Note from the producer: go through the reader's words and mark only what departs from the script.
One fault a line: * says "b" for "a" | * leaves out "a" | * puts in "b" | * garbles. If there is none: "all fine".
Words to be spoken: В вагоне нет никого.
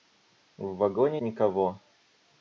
* leaves out "нет"